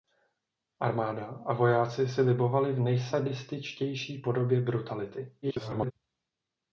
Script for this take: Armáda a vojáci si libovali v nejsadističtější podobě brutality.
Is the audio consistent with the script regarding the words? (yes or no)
no